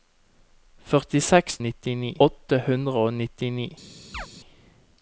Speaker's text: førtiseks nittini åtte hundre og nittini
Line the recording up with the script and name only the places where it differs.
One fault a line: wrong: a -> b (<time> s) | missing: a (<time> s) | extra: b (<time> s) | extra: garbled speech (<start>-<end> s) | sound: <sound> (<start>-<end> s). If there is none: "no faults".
sound: chirp (4.1-4.3 s)